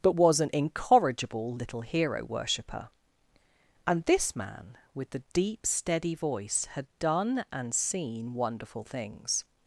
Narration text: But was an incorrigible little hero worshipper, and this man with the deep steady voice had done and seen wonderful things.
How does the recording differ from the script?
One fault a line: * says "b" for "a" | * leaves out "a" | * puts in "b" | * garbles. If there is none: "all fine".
all fine